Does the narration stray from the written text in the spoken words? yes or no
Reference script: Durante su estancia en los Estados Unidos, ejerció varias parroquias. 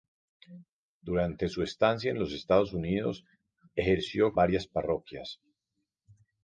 no